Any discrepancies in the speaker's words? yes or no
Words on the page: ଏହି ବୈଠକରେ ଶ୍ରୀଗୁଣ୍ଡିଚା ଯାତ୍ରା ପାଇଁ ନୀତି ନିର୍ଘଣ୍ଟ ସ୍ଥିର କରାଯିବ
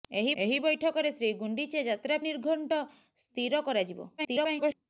yes